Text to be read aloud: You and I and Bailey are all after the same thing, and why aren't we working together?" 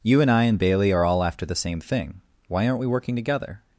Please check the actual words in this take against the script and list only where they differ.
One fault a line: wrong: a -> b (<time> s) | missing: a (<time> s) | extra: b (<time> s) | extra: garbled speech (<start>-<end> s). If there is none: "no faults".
missing: and (2.2 s)